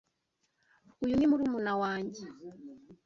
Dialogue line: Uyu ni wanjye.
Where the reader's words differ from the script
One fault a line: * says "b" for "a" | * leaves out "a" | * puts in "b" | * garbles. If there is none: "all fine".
* puts in "murumuna"